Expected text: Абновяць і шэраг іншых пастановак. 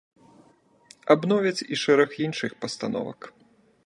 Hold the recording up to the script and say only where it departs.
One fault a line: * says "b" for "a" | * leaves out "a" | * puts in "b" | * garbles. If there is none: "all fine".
all fine